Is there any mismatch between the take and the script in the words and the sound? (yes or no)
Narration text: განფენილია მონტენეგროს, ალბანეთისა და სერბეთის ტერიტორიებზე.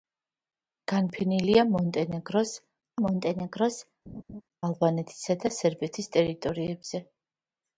yes